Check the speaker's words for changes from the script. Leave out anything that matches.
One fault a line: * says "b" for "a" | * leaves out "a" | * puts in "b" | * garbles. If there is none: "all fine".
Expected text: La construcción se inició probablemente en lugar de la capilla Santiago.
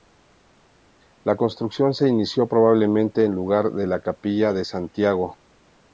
* puts in "de"